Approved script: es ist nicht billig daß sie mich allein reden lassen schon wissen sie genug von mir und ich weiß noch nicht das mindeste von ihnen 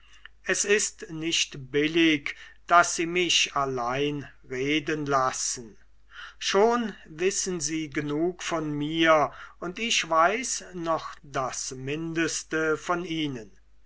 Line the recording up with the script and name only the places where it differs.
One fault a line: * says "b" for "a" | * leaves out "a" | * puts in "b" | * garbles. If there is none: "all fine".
* leaves out "nicht"